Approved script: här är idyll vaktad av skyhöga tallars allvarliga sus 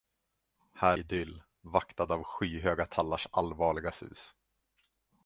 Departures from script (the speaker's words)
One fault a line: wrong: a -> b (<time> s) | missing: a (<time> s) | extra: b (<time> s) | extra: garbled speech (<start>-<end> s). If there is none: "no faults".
missing: är (1.0 s)